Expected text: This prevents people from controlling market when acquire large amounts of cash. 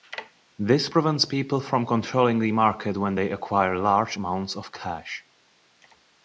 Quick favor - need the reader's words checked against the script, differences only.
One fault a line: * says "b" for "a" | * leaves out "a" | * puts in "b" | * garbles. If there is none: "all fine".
* puts in "the"
* puts in "they"